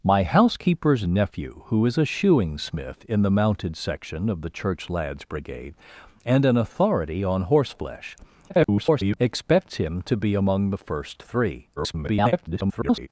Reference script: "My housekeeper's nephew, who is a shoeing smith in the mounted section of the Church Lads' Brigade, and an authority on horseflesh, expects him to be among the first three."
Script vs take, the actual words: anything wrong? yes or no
yes